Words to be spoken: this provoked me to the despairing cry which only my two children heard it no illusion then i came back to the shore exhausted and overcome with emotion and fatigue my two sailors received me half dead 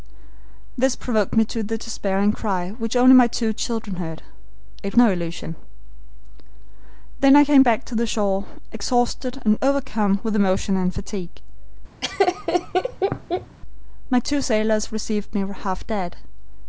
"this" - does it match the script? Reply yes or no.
yes